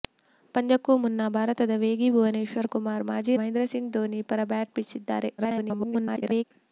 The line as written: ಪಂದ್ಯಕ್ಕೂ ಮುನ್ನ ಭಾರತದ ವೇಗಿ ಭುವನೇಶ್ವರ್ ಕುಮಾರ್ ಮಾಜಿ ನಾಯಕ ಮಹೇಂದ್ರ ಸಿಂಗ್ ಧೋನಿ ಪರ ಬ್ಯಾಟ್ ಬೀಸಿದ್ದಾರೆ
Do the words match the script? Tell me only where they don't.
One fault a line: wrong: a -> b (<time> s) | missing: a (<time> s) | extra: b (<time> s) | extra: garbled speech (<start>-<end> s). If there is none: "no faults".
missing: ನಾಯಕ (3.4 s)
extra: garbled speech (5.4-6.4 s)